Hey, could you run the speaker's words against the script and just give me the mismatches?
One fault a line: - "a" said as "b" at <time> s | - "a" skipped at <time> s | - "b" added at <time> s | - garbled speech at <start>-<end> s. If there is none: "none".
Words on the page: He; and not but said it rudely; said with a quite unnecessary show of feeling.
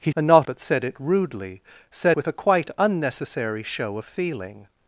none